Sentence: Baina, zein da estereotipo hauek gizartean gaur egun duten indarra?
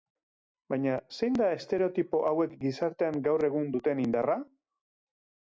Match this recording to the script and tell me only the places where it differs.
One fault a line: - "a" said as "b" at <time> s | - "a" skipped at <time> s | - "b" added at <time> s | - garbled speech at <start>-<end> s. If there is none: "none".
none